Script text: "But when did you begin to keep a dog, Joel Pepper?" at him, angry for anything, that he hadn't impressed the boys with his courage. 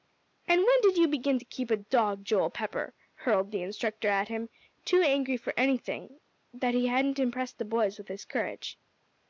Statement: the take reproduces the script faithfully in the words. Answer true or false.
false